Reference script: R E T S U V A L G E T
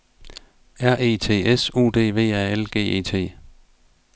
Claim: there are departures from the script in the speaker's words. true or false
true